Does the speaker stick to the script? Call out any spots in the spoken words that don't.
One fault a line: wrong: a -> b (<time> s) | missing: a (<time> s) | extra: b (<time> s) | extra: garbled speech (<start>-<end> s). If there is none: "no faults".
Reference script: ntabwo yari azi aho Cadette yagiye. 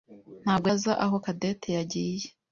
missing: yari (0.7 s)